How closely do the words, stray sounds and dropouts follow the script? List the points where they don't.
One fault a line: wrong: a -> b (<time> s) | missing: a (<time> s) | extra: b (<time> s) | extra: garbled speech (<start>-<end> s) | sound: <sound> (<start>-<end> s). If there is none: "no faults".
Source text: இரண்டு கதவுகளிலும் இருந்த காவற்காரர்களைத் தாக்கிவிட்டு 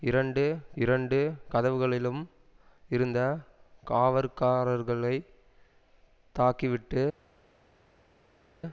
extra: இரண்டு (0.8 s)